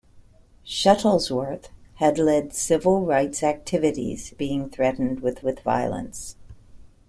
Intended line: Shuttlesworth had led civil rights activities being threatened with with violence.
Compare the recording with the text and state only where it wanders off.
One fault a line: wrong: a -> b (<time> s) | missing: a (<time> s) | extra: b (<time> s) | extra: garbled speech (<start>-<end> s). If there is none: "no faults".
no faults